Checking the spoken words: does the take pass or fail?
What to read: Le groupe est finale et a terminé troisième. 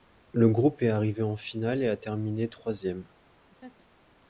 fail